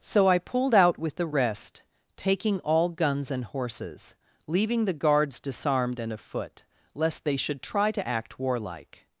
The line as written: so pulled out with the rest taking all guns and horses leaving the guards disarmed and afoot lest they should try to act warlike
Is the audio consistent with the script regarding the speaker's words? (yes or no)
no